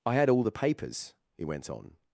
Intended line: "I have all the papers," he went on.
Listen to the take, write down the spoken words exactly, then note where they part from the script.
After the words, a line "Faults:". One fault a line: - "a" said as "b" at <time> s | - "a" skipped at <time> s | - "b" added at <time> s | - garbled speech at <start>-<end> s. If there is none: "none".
"I had all the papers," he went on.
Faults:
- "have" said as "had" at 0.1 s